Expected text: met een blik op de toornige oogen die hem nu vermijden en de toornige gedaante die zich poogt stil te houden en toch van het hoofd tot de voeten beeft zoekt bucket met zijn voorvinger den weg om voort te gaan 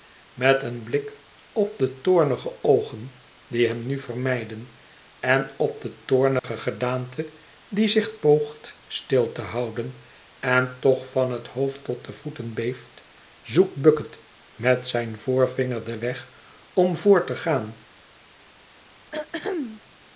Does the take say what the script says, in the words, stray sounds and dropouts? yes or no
no